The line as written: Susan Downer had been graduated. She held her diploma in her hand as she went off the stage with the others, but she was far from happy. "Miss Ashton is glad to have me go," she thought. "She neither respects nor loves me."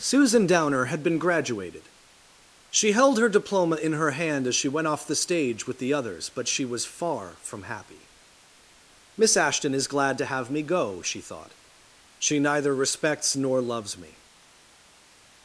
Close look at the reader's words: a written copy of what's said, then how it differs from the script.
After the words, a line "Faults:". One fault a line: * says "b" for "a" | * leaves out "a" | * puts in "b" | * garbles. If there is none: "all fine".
Susan Downer had been graduated. She held her diploma in her hand as she went off the stage with the others, but she was far from happy. "Miss Ashton is glad to have me go," she thought. "She neither respects nor loves me."
Faults:
all fine